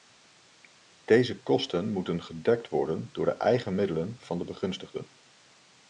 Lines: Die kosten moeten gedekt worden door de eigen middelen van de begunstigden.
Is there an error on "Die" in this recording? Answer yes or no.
yes